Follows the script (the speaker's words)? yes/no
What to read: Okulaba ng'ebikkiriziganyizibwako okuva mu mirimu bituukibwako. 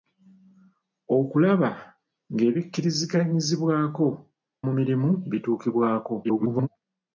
no